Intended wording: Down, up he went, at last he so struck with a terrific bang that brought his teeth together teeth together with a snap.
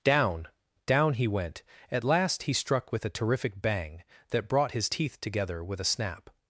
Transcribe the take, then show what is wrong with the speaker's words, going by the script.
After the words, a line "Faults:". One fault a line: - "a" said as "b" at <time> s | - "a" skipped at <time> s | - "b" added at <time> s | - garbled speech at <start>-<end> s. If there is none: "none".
Down, down he went, at last he struck with a terrific bang that brought his teeth together with a snap.
Faults:
- "up" said as "down" at 0.8 s
- "so" skipped at 2.5 s
- "teeth together" skipped at 5.6 s